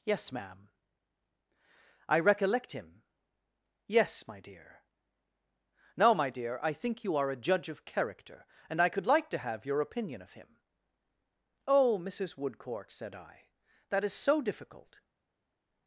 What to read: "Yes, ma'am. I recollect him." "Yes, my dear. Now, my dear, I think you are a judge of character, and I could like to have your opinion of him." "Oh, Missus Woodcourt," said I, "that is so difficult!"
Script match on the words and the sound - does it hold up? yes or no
yes